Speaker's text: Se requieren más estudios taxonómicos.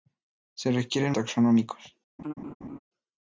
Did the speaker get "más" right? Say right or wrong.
wrong